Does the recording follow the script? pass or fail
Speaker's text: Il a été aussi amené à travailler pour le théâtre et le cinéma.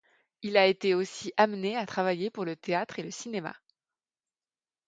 pass